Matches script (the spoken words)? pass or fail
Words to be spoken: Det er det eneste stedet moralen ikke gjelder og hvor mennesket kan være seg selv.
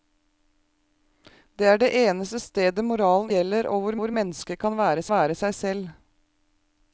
fail